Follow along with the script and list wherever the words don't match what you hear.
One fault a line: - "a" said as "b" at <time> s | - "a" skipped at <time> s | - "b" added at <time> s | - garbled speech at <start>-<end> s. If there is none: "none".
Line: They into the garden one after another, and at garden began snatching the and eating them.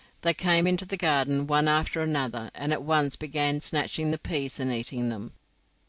- "came" added at 0.3 s
- "garden" said as "once" at 2.8 s
- "peas" added at 4.2 s